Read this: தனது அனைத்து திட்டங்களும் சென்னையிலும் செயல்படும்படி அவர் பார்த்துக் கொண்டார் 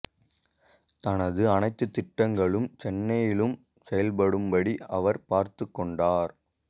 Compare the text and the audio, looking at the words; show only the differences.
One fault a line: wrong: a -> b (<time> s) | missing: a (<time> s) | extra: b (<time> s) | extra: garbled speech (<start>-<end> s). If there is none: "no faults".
no faults